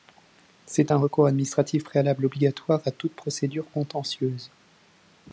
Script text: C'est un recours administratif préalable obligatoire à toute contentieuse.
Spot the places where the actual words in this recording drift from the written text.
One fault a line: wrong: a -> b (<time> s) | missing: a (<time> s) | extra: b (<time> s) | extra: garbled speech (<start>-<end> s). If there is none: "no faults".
extra: procédure (3.1 s)